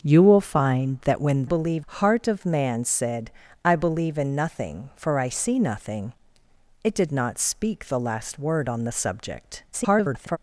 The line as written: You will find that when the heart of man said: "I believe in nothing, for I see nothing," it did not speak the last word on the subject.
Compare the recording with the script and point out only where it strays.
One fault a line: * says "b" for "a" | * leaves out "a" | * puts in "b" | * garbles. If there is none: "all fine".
* says "believe" for "the"
* garbles